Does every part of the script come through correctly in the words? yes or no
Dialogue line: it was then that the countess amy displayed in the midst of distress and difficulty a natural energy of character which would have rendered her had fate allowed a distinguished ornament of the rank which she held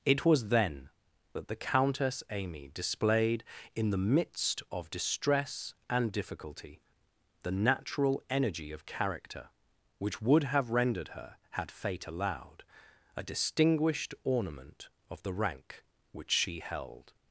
no